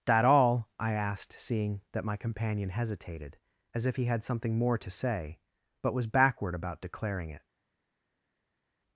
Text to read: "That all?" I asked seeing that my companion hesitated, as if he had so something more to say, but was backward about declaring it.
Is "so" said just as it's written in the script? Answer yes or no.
no